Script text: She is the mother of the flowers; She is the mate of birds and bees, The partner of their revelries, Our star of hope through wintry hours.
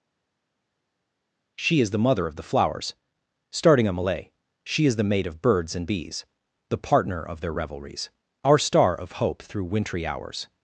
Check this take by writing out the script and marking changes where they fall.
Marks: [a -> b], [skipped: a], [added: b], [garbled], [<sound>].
She is the mother of the flowers; [added: starting a malay] She is the mate of birds and bees, The partner of their revelries, Our star of hope through wintry hours.